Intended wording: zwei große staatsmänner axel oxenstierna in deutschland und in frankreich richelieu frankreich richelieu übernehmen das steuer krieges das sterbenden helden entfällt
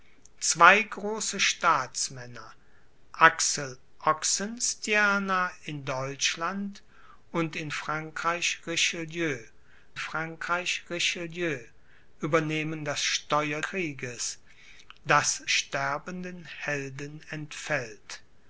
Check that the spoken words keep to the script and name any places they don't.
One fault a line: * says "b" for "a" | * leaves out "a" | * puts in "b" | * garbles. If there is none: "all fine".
all fine